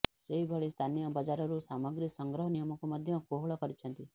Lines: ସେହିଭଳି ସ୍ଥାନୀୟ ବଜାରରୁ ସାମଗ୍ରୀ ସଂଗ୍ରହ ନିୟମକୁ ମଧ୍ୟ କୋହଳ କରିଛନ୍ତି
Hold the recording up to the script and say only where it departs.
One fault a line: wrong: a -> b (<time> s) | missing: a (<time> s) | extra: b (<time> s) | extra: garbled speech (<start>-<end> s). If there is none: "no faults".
no faults